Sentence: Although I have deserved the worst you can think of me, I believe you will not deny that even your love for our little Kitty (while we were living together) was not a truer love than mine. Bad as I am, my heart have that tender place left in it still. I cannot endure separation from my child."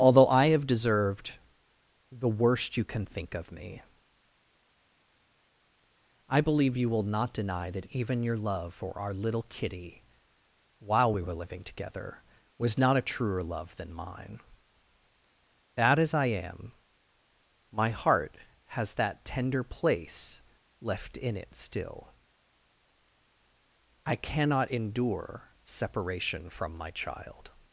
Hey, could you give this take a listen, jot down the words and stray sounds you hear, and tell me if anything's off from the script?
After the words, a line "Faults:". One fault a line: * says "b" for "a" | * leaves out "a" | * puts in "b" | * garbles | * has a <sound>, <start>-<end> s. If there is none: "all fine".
Although I have deserved the worst you can think of me, I believe you will not deny that even your love for our little Kitty (while we were living together) was not a truer love than mine. Bad as I am, my heart has that tender place left in it still. I cannot endure separation from my child."
Faults:
* says "has" for "have"